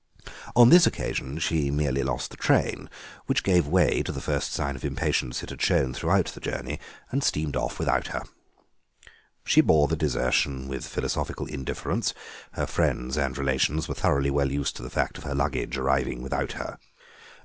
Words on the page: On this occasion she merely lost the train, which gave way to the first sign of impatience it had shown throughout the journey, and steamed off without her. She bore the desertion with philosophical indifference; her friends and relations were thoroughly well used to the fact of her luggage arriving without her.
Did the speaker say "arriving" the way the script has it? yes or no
yes